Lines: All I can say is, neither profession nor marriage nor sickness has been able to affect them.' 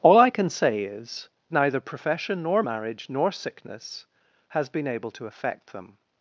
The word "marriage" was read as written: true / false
true